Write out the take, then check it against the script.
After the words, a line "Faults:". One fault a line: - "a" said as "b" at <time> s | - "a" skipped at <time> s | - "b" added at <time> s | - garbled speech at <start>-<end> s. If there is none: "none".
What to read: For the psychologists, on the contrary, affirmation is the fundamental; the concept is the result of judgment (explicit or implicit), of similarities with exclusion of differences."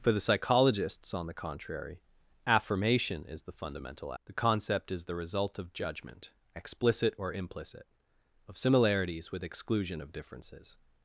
For the psychologists, on the contrary, affirmation is the fundamental; the concept is the result of judgment (explicit or implicit), of similarities with exclusion of differences."
Faults:
none